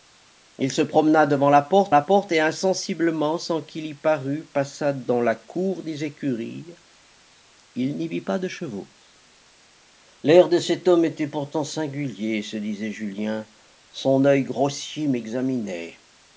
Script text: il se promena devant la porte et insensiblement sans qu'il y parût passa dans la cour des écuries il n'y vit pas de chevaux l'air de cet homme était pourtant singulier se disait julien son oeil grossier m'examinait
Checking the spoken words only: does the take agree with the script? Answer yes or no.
no